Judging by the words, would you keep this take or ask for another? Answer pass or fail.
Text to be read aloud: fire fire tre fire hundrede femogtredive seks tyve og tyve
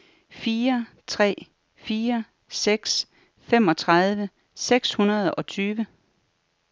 fail